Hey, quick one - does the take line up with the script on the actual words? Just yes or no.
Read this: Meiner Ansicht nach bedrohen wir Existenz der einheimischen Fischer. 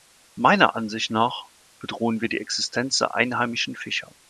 no